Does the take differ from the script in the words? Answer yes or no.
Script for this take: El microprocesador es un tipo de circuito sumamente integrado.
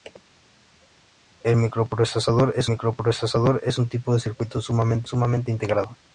yes